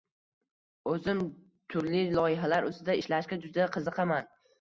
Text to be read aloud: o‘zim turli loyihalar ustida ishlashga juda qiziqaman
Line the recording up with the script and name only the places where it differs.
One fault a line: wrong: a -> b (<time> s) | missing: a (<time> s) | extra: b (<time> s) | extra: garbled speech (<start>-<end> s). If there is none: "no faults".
no faults